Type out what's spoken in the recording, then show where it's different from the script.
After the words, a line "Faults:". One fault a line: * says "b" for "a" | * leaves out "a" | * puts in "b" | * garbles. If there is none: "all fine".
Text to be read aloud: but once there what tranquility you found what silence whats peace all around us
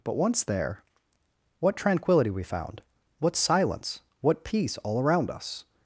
but once there what tranquility we found what silence what peace all around us
Faults:
* says "we" for "you"
* says "what" for "whats"